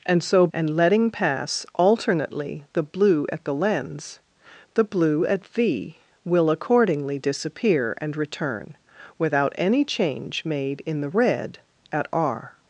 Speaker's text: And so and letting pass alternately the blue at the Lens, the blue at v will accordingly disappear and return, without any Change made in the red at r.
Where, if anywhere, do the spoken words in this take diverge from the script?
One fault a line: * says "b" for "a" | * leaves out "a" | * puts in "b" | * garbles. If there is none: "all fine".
all fine